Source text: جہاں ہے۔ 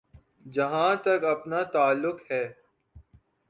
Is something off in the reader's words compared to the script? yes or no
yes